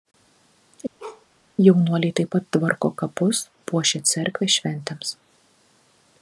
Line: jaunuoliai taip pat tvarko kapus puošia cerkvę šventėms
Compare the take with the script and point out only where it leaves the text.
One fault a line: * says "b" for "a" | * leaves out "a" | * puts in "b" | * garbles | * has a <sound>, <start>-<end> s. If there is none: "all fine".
* has a bark, 1.0-1.3 s